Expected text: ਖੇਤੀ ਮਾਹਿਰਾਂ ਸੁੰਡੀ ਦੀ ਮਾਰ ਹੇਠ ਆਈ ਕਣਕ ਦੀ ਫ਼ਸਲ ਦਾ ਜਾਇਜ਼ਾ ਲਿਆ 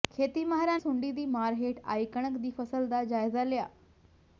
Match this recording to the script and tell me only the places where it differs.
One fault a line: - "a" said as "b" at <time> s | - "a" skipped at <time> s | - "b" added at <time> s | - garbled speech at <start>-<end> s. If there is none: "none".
none